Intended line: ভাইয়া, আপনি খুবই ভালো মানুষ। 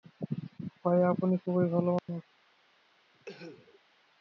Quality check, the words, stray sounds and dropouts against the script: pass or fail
fail